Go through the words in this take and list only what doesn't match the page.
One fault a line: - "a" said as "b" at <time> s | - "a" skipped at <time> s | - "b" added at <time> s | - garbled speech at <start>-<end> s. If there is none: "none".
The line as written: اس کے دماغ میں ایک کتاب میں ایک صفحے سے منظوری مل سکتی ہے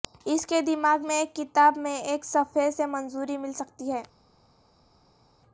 none